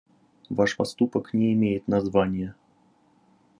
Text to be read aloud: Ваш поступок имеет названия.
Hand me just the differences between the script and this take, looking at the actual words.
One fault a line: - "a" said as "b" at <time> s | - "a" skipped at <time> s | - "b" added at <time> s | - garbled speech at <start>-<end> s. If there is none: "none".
- "не" added at 1.3 s